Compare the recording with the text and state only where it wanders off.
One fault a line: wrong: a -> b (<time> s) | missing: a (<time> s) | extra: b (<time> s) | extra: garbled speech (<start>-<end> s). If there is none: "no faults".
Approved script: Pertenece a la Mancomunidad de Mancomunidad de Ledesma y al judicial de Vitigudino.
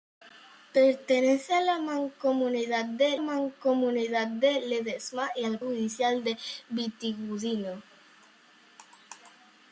no faults